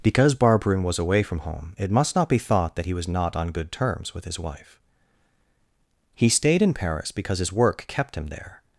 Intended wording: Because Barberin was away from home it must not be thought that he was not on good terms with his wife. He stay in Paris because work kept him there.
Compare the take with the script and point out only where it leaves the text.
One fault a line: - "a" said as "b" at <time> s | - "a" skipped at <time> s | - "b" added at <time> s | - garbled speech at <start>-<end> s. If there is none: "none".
- "stay" said as "stayed" at 6.3 s
- "his" added at 7.4 s